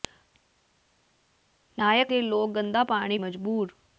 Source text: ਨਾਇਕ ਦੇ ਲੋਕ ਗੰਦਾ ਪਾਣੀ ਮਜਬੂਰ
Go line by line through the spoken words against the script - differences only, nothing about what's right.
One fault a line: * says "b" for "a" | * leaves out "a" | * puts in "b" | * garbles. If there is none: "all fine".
all fine